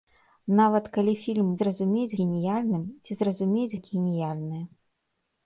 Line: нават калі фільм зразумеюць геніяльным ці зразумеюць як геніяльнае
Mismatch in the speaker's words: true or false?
false